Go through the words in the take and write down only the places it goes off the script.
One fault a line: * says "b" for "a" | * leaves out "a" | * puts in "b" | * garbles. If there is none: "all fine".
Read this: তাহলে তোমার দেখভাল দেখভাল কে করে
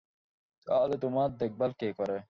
* leaves out "দেখভাল"